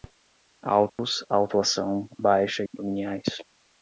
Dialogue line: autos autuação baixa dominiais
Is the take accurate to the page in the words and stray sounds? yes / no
no